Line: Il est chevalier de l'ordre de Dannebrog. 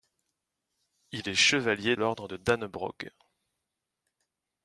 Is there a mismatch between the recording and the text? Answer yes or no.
yes